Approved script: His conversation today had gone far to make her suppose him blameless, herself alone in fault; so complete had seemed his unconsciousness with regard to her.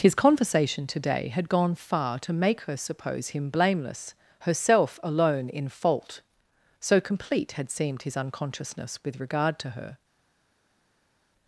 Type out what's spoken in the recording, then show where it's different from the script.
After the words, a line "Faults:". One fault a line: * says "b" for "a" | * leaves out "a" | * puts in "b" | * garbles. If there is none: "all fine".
His conversation today had gone far to make her suppose him blameless, herself alone in fault; so complete had seemed his unconsciousness with regard to her.
Faults:
all fine